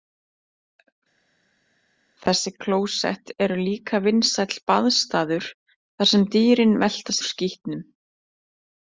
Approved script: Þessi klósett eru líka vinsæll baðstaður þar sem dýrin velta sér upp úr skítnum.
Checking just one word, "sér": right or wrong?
wrong